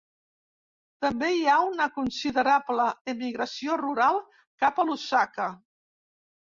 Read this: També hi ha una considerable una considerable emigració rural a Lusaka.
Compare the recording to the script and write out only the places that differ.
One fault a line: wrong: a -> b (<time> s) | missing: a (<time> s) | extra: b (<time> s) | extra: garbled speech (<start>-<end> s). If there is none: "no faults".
missing: una considerable (2.9 s)
extra: cap (4.7 s)